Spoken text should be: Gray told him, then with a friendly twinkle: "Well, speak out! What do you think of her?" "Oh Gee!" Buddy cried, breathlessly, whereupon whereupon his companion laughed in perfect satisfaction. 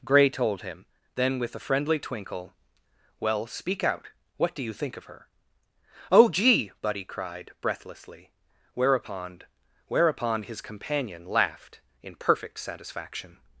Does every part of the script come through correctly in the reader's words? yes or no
yes